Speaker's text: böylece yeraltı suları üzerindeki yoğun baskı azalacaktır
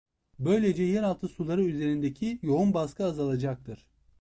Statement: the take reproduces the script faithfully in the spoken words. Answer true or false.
true